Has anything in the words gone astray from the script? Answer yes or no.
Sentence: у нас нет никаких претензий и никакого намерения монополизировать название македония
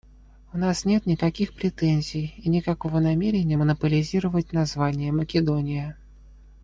no